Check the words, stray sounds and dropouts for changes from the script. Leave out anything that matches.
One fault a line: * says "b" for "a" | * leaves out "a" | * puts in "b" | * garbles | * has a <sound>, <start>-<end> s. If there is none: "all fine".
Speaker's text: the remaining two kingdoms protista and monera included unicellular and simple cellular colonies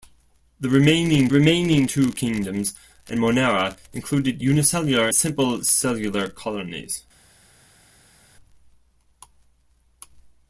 * puts in "remaining"
* leaves out "protista"
* leaves out "and"